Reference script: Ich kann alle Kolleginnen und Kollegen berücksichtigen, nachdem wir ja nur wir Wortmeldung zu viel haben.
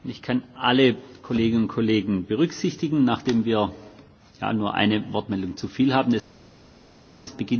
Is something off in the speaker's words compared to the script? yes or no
yes